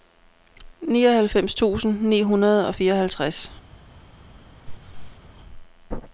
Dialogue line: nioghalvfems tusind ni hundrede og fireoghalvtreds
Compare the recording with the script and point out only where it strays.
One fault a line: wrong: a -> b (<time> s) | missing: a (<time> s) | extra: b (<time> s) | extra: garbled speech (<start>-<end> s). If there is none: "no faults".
no faults